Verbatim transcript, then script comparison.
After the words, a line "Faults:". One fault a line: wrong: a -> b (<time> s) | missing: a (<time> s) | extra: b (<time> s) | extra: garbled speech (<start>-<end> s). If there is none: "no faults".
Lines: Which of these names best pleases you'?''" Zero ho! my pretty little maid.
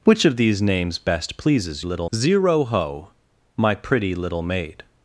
Which of these names best pleases little'?''" Zero ho! my pretty little maid.
Faults:
wrong: you -> little (1.8 s)